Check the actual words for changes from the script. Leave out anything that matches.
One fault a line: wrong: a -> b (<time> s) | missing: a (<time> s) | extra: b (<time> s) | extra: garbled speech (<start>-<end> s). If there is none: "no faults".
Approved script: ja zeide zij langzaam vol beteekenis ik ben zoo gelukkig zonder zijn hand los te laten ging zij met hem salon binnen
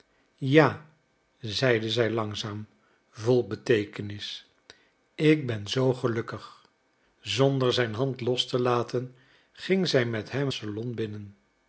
no faults